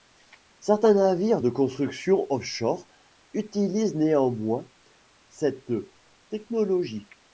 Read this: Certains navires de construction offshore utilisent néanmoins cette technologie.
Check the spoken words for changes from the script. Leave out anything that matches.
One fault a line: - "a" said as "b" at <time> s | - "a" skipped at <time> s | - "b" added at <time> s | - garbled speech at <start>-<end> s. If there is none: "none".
none